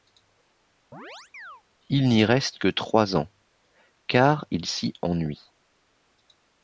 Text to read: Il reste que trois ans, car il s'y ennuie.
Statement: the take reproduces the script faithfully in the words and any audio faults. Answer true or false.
false